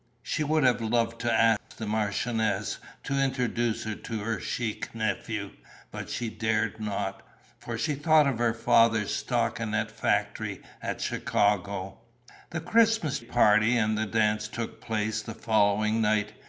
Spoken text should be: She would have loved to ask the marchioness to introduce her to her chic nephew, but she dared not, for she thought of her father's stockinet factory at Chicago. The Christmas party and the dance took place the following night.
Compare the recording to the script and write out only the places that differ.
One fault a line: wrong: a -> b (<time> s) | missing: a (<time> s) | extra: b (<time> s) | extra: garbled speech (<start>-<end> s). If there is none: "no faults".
no faults